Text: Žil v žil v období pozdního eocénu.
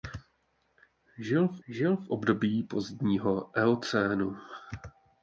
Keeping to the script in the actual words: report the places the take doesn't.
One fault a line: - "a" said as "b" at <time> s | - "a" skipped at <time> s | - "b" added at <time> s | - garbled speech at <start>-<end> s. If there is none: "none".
none